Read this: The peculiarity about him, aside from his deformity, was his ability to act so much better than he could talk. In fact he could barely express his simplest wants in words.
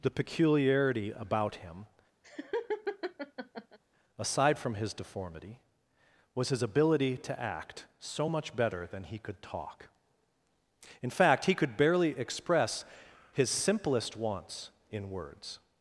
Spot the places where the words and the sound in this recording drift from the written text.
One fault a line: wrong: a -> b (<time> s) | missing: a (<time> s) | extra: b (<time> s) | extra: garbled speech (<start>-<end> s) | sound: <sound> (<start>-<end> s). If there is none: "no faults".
sound: laugh (2.2-3.8 s)